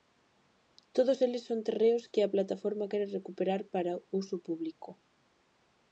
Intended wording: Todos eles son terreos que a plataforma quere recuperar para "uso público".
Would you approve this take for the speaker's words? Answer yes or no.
yes